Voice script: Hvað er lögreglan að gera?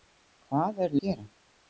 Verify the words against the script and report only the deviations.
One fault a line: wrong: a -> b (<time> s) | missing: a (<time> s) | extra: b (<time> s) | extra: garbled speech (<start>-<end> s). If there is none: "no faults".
missing: lögreglan (1.0 s)